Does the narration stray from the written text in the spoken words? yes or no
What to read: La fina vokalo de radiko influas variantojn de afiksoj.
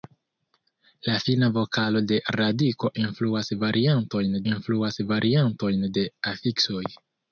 yes